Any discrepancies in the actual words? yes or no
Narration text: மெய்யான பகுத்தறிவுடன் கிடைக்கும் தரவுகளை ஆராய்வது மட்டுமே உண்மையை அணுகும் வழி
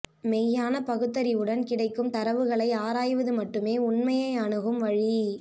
no